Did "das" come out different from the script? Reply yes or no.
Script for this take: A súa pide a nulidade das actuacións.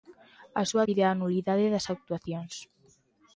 no